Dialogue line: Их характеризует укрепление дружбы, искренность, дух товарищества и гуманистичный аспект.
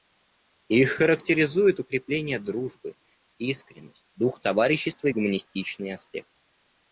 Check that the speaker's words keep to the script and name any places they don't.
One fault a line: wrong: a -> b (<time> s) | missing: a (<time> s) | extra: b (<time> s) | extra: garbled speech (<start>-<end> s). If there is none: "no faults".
no faults